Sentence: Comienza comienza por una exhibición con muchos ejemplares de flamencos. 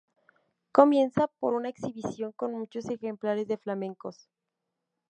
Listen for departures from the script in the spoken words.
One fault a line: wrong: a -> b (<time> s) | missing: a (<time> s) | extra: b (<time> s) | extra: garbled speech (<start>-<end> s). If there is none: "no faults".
missing: comienza (1.3 s)